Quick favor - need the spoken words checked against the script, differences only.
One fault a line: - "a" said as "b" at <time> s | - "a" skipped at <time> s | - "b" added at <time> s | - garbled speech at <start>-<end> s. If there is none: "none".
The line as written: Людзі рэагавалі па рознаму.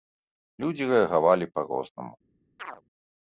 none